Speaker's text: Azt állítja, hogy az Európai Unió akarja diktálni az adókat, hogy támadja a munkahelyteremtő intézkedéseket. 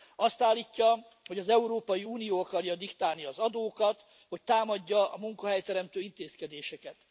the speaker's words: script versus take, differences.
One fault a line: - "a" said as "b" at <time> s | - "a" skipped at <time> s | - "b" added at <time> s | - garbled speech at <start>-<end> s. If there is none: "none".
none